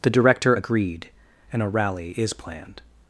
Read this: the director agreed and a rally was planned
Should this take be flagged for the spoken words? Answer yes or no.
yes